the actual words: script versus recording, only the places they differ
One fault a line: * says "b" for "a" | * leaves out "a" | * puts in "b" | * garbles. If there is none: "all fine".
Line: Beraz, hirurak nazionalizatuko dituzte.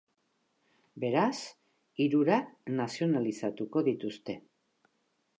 all fine